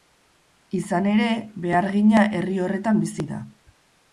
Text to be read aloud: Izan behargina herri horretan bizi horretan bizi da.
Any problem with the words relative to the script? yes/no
yes